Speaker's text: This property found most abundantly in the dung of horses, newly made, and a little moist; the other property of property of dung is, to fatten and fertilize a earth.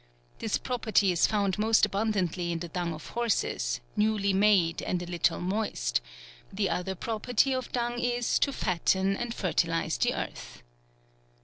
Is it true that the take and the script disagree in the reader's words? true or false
true